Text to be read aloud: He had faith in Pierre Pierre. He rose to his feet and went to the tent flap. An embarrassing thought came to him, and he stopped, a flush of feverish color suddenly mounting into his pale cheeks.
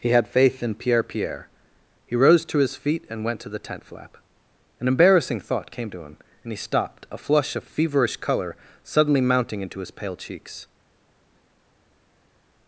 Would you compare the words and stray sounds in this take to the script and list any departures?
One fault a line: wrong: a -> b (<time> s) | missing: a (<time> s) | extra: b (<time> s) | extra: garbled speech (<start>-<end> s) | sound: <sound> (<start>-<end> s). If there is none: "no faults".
no faults